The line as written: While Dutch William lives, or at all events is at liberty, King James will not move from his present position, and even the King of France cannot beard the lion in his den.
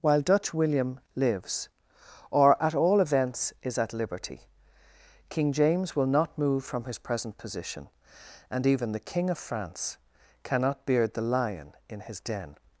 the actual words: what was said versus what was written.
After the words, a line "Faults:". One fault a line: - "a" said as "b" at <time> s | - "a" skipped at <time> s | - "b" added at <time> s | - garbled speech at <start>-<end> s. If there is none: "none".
While Dutch William lives, or at all events is at liberty, King James will not move from his present position, and even the King of France cannot beard the lion in his den.
Faults:
none